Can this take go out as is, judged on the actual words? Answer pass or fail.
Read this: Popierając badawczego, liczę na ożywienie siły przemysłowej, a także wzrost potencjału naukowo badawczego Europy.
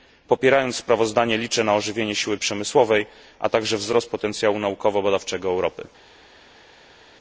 fail